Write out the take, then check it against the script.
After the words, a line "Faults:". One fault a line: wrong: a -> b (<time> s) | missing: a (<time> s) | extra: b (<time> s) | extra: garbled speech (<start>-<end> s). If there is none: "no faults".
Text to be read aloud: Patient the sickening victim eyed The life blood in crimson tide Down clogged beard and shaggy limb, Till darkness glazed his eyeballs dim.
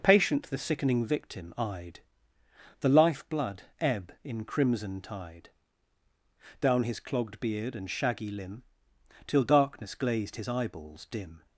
Patient the sickening victim eyed The life blood ebb in crimson tide Down his clogged beard and shaggy limb, Till darkness glazed his eyeballs dim.
Faults:
extra: ebb (3.8 s)
extra: his (6.8 s)